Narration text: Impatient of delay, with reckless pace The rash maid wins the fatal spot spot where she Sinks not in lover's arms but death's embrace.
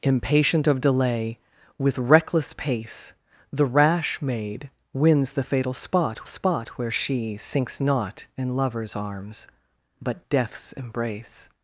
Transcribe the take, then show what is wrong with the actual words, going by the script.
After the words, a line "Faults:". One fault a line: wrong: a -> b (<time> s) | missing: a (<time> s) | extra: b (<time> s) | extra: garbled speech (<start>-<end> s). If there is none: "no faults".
Impatient of delay, with reckless pace The rash maid wins the fatal spot spot where she Sinks not in lover's arms but death's embrace.
Faults:
no faults